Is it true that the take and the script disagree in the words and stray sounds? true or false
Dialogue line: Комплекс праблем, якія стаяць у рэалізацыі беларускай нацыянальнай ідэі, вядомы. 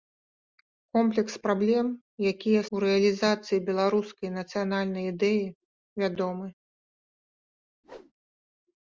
true